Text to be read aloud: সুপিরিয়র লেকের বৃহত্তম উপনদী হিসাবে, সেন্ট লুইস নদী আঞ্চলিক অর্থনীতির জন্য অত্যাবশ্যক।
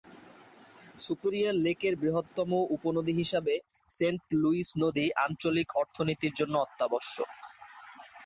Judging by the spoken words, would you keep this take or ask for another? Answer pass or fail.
pass